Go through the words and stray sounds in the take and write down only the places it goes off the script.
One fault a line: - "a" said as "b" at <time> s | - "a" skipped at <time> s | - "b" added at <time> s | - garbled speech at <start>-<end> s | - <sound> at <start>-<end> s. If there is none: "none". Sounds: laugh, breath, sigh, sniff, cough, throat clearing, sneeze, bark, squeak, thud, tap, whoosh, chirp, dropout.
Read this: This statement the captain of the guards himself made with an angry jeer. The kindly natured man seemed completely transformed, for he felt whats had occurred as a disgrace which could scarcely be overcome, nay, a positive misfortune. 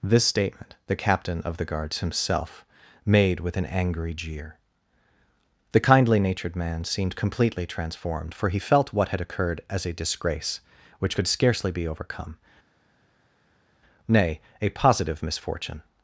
- "whats" said as "what" at 8.9 s